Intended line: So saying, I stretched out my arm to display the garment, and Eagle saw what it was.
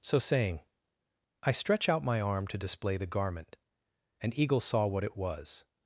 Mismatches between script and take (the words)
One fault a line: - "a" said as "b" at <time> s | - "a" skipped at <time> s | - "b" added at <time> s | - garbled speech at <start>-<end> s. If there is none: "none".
- "stretched" said as "stretch" at 1.5 s